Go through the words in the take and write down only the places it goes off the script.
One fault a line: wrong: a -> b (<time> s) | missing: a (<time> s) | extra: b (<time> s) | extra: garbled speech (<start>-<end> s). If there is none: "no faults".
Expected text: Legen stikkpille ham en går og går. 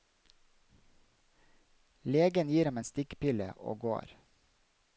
wrong: stikkpille -> gir (2.5 s)
wrong: går -> stikkpille (2.9 s)